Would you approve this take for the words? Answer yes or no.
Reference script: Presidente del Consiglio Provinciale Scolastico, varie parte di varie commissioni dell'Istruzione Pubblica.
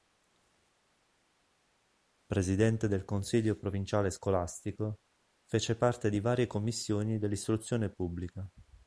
no